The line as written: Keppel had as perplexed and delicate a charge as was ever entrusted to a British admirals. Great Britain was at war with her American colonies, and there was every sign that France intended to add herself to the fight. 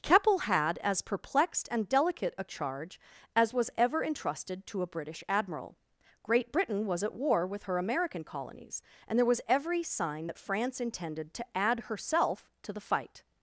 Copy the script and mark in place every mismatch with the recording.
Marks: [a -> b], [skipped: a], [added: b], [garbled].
Keppel had as perplexed and delicate a charge as was ever entrusted to a British [admirals. -> admiral] Great Britain was at war with her American colonies, and there was every sign that France intended to add herself to the fight.